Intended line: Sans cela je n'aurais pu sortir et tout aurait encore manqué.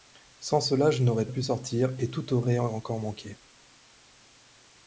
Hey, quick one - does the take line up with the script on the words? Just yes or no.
yes